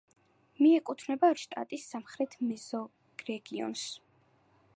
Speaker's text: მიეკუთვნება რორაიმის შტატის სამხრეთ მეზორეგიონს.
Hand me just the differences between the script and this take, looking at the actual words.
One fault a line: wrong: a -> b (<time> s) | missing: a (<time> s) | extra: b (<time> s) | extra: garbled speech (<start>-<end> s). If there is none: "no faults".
missing: რორაიმის (1.3 s)